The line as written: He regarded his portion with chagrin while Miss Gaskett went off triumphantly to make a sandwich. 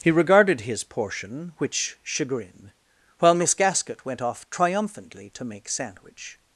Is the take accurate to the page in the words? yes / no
no